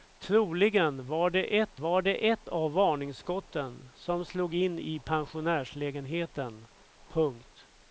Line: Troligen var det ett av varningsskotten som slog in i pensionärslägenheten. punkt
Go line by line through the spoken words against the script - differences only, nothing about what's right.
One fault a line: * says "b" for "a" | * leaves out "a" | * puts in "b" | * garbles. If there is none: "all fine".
* puts in "var det ett"